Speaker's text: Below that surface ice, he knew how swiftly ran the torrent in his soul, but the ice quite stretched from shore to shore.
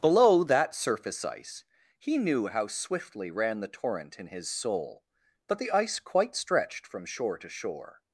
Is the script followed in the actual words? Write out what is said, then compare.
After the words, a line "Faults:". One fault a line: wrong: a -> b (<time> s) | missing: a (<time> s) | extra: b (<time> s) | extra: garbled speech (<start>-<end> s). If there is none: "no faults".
Below that surface ice, he knew how swiftly ran the torrent in his soul, but the ice quite stretched from shore to shore.
Faults:
no faults